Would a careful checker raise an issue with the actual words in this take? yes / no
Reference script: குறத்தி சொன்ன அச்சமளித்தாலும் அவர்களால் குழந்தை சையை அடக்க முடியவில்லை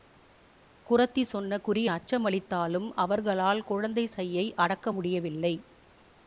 yes